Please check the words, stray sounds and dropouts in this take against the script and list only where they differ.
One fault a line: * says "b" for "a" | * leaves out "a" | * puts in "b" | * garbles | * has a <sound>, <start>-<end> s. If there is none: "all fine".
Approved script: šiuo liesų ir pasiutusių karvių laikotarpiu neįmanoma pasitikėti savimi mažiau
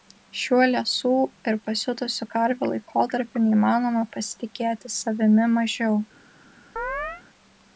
* has a chirp, 6.8-7.2 s